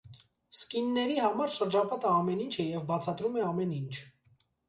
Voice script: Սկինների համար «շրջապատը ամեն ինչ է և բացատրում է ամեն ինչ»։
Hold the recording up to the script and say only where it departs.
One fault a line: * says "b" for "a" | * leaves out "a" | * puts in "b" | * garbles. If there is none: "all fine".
all fine